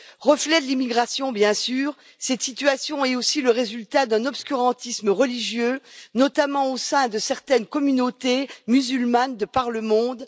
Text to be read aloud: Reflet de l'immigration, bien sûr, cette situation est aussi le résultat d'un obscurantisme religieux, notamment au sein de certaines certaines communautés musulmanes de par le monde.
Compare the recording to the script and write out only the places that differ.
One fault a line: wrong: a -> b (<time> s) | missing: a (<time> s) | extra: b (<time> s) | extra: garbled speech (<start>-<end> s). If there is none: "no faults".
missing: certaines (7.7 s)